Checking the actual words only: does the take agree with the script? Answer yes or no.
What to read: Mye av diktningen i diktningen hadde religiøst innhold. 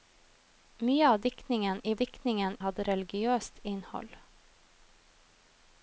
yes